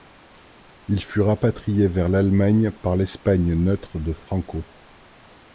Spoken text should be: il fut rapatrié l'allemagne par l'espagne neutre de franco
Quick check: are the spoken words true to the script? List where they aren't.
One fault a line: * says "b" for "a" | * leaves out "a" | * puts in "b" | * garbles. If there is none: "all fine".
* puts in "vers"